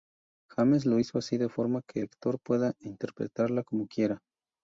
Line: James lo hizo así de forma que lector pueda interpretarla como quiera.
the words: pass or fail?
pass